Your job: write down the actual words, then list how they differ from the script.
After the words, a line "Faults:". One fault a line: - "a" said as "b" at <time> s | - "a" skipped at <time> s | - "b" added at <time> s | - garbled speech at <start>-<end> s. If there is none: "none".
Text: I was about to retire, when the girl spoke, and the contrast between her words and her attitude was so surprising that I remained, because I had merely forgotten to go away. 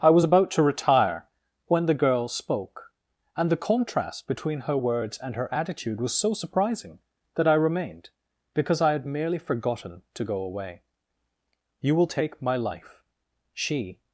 I was about to retire, when the girl spoke, and the contrast between her words and her attitude was so surprising that I remained, because I had merely forgotten to go away. "You will take my life," she
Faults:
- "You will take my life she" added at 11.8 s